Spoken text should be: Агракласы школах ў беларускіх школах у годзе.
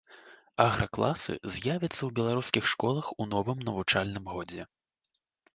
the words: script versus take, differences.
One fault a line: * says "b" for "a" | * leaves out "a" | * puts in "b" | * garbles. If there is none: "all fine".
* says "з'явяцца" for "школах"
* puts in "новым навучальным"